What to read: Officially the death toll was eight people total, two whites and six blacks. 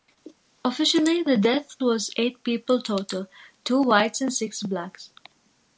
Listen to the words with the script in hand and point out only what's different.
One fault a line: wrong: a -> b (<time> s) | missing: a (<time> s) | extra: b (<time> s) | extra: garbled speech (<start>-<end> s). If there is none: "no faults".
missing: toll (1.8 s)